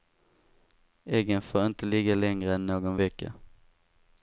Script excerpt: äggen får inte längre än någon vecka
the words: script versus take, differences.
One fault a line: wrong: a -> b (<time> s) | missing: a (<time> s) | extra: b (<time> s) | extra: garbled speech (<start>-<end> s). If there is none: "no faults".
extra: ligga (1.9 s)